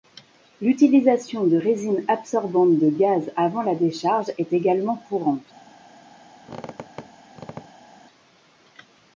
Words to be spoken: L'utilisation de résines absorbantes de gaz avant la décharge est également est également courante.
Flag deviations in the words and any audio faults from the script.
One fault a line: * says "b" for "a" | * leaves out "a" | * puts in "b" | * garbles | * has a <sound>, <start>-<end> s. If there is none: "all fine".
* leaves out "est également"
* has a squeak, 6.4-7.9 s